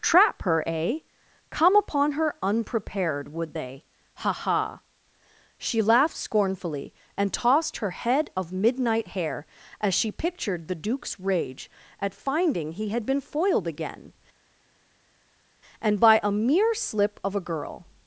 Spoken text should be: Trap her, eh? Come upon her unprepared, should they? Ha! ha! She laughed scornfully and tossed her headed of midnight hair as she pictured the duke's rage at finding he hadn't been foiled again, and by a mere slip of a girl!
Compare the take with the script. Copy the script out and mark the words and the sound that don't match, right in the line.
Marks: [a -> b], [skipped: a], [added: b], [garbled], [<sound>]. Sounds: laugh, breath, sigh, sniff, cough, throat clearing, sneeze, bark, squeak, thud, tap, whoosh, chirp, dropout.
Trap her, eh? Come upon her unprepared, [should -> would] they? Ha! ha! She laughed scornfully and tossed her [headed -> head] of midnight hair as she pictured the duke's rage at finding he [hadn't -> had] been foiled again, and by a mere slip of a girl!